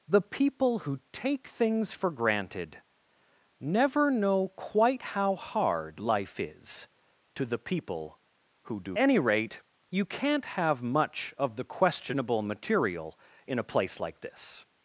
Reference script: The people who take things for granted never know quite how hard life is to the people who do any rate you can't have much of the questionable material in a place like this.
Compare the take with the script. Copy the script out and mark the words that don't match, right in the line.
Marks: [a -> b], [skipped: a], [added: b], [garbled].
The people who take things for granted never know quite how hard life is to the people who do any rate you can't have much of the questionable material in a place like this.